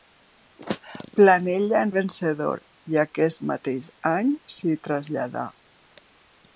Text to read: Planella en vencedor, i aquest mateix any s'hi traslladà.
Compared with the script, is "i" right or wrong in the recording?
right